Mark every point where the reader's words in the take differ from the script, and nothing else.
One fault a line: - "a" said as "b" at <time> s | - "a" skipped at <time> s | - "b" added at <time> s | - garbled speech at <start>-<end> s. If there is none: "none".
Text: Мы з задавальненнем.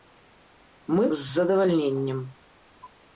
none